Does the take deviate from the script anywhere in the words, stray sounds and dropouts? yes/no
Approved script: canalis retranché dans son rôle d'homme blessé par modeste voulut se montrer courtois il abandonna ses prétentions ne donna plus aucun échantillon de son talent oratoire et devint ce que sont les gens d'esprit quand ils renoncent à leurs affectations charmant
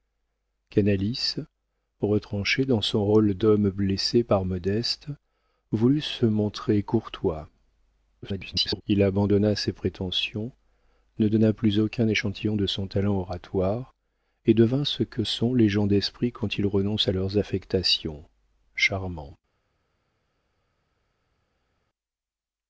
yes